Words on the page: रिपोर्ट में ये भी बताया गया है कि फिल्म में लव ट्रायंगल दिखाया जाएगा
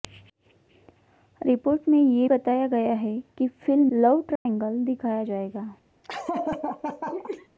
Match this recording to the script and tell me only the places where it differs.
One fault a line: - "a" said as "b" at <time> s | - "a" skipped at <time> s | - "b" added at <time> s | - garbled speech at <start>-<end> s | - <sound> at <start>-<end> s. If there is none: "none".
- "भी" skipped at 2.3 s
- "में" skipped at 3.9 s
- dropout at 4.4-4.5 s
- laugh at 6.0-7.5 s